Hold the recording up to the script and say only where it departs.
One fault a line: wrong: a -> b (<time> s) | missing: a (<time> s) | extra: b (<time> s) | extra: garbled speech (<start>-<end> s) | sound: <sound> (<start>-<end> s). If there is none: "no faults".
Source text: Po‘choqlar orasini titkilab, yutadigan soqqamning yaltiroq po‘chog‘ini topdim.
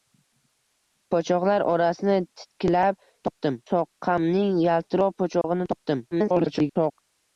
wrong: yutadigan -> topdim (3.3 s)
sound: dropout (5.4-5.4 s)
extra: garbled speech (6.1-7.0 s)